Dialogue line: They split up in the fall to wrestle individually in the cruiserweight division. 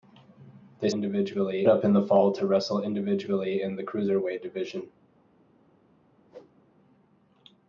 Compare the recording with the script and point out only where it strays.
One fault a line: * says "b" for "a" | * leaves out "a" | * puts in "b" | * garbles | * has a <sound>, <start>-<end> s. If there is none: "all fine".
* says "individually" for "split"
* has a whoosh, 6.3-6.5 s